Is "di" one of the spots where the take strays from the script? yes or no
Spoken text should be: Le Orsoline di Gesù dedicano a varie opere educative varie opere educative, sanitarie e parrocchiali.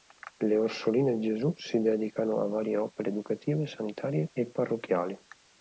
no